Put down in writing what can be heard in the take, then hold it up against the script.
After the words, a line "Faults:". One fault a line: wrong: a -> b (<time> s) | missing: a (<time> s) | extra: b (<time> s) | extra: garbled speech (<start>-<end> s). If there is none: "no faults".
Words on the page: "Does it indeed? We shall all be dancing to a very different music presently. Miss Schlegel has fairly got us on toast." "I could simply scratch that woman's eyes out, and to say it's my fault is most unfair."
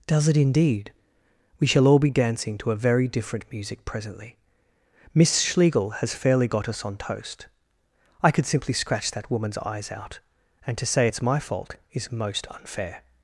"Does it indeed? We shall all be dancing to a very different music presently. Miss Schlegel has fairly got us on toast." "I could simply scratch that woman's eyes out, and to say it's my fault is most unfair."
Faults:
no faults